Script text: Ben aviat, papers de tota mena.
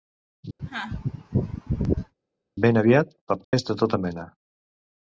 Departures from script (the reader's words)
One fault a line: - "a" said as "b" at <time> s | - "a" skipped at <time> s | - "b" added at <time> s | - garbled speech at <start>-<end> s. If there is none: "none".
none